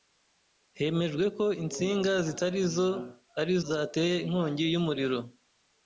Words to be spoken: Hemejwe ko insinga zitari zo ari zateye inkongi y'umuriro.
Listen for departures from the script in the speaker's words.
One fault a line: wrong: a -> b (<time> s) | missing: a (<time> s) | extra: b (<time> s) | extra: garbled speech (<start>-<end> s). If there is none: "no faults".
no faults